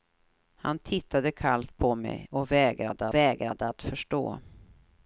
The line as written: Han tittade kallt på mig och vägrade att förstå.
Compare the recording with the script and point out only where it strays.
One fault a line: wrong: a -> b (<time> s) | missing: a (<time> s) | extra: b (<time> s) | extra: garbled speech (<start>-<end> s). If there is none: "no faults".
extra: vägrade (3.1 s)